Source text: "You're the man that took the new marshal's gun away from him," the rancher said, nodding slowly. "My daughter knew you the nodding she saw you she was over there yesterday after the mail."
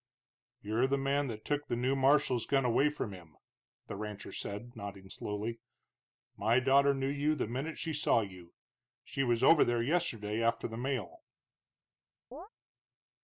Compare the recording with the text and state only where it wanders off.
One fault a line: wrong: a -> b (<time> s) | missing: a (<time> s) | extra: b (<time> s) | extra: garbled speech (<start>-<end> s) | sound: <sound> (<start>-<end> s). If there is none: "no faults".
wrong: nodding -> minute (7.5 s)
sound: chirp (12.3-12.5 s)